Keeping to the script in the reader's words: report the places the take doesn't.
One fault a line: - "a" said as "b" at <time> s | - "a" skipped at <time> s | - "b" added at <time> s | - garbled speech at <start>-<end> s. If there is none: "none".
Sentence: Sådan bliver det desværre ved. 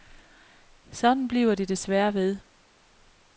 none